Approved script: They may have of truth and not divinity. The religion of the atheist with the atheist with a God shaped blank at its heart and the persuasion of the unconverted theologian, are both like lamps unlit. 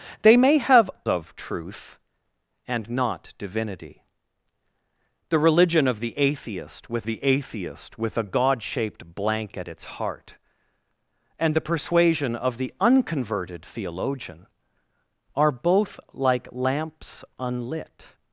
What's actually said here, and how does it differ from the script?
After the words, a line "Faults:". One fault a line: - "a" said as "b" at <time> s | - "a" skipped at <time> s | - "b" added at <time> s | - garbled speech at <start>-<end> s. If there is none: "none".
They may have of truth and not divinity. The religion of the atheist with the atheist with a God shaped blank at its heart and the persuasion of the unconverted theologian, are both like lamps unlit.
Faults:
none